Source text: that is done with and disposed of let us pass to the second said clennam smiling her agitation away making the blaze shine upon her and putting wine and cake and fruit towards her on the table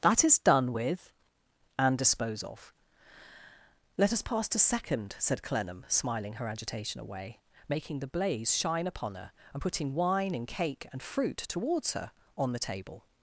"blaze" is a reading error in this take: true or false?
false